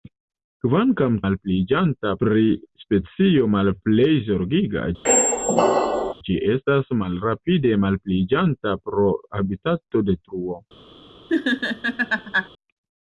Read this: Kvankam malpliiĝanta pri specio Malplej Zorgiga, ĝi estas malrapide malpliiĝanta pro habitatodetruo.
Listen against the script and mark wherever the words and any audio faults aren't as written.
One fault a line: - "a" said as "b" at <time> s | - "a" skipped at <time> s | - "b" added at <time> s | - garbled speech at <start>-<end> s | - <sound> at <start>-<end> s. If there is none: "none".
- squeak at 5.0-6.1 s
- laugh at 11.3-12.5 s